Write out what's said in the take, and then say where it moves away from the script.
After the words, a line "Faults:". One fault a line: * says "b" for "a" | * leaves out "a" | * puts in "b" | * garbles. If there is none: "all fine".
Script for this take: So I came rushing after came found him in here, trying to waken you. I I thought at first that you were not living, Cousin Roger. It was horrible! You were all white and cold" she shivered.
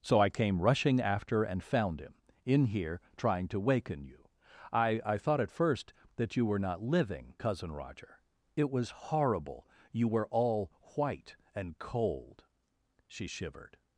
So I came rushing after and found him in here, trying to waken you. I I thought at first that you were not living, Cousin Roger. It was horrible! You were all white and cold" she shivered.
Faults:
* says "and" for "came"